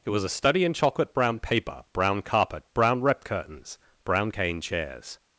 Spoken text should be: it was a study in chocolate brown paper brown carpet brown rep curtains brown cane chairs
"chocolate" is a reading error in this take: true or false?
false